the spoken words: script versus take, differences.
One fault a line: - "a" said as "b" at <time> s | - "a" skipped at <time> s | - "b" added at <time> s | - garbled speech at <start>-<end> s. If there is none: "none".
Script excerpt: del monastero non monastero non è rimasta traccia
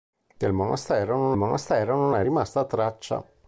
none